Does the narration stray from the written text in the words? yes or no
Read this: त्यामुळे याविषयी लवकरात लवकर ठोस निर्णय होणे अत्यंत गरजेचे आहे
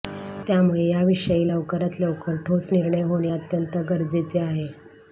no